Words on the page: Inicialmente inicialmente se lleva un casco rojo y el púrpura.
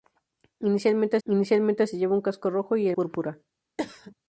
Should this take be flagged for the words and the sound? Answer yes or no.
yes